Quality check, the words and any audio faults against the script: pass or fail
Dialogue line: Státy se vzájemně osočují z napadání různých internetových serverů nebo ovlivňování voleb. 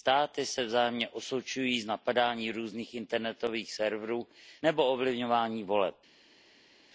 pass